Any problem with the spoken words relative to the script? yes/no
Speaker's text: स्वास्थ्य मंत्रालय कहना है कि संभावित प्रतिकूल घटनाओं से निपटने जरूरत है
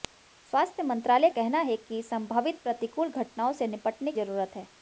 no